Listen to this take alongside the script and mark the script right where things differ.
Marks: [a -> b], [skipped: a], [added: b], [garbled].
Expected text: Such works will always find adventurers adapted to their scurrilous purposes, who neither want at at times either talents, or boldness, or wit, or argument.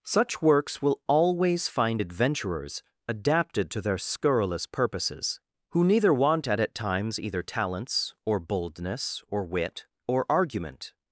Such works will always find adventurers adapted to their scurrilous purposes, who neither want at at times either talents, or boldness, or wit, or argument.